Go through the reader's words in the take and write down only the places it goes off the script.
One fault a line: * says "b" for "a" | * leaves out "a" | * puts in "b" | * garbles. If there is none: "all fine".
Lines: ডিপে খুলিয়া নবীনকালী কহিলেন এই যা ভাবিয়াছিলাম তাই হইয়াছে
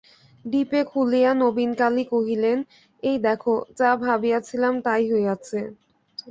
* puts in "দেখো"